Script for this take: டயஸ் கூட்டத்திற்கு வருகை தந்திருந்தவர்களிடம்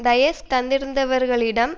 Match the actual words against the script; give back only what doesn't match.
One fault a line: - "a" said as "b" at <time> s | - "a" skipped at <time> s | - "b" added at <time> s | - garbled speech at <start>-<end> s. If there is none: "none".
- "கூட்டத்திற்கு வருகை" skipped at 0.4 s